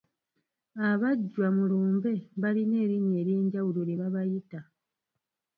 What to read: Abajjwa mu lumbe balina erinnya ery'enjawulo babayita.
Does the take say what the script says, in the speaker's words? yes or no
no